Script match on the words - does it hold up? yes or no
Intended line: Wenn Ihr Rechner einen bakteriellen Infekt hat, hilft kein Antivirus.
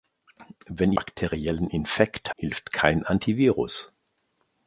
no